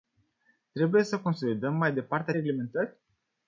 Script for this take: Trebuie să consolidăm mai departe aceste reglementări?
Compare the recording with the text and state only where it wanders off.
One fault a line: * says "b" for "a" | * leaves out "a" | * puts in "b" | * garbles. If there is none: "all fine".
* leaves out "aceste"